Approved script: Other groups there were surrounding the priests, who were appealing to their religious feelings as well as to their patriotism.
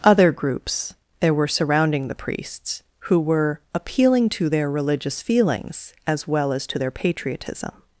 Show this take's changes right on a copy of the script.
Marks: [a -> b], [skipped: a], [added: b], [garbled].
Other groups there were surrounding the priests, who were appealing to their religious feelings as well as to their patriotism.